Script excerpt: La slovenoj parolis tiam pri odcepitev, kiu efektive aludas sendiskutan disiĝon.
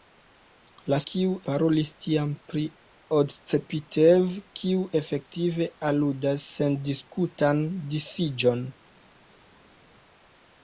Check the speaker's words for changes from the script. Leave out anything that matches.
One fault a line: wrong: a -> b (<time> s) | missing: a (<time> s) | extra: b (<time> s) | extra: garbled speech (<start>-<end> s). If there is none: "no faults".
wrong: slovenoj -> kiu (1.1 s)